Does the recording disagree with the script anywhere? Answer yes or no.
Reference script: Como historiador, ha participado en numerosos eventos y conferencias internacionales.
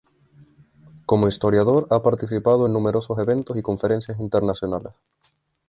no